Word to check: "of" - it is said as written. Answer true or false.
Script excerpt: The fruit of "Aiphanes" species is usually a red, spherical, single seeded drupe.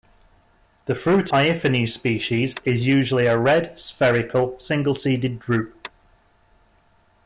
false